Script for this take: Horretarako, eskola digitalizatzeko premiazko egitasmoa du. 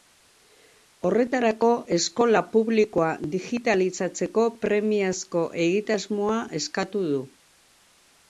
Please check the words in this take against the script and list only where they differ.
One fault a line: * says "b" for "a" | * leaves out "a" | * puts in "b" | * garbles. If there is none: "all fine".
* puts in "publikoa"
* puts in "eskatu"